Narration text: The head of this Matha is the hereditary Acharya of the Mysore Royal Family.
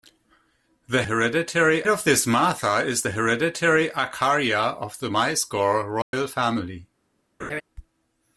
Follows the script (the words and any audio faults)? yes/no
no